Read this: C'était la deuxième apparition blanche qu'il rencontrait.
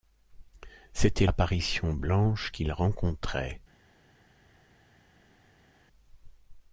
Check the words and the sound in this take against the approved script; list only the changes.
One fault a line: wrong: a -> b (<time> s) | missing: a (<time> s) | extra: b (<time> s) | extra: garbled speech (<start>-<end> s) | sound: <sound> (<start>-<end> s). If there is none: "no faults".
missing: la deuxième (1.3 s)